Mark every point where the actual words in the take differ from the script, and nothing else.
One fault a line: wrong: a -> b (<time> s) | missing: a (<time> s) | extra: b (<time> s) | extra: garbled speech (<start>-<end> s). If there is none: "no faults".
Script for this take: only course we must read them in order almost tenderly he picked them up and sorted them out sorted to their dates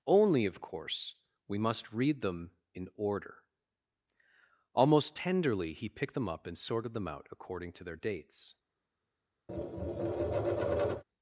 extra: of (0.5 s)
wrong: sorted -> according (7.3 s)